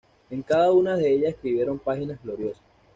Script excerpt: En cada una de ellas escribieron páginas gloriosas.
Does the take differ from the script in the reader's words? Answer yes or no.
no